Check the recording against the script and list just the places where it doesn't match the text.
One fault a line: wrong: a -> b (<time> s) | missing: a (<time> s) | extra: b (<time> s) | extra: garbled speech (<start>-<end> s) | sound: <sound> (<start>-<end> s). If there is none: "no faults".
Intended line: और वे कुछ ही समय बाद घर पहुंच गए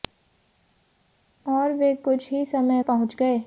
missing: बाद घर (2.8 s)